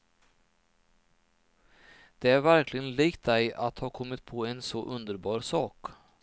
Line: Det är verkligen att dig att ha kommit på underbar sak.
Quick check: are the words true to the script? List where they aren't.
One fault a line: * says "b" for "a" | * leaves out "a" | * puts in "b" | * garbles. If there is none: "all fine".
* says "likt" for "att"
* puts in "en så"